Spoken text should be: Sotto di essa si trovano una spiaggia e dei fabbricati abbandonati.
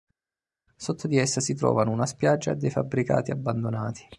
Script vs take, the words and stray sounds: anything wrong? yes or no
no